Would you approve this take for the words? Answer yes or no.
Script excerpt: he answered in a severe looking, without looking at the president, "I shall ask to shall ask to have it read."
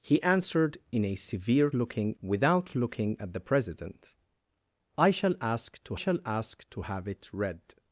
yes